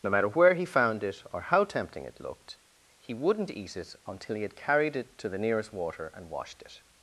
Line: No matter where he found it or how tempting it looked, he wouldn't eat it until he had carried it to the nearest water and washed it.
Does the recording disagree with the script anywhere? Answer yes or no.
no